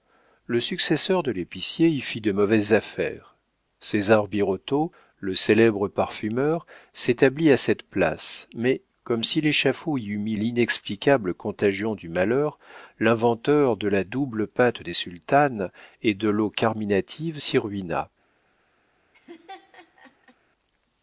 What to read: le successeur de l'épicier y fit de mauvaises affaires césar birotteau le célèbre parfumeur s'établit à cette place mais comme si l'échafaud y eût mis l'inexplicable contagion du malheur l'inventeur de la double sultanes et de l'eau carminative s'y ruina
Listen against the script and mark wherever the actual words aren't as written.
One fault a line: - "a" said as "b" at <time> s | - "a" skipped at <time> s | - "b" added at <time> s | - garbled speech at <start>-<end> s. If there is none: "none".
- "pâte des" added at 14.5 s